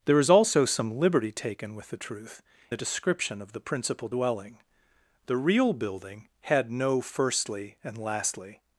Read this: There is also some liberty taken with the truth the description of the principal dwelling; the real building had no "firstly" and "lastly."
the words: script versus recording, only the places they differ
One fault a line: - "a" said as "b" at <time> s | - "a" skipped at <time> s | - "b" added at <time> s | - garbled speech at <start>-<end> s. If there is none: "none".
none